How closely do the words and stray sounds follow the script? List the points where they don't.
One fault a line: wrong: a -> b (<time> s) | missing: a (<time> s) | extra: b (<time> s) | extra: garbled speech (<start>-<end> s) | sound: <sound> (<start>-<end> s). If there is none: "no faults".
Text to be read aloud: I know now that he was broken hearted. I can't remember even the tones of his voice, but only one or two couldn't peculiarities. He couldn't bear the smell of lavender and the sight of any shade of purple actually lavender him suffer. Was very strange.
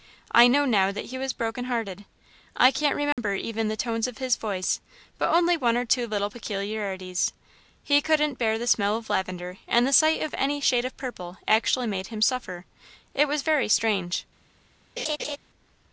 sound: dropout (3.1-3.2 s)
wrong: couldn't -> little (6.1 s)
wrong: lavender -> made (11.9 s)
extra: It (13.1 s)
sound: laugh (15.0-15.4 s)